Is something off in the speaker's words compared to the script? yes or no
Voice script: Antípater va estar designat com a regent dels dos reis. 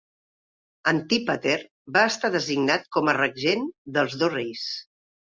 no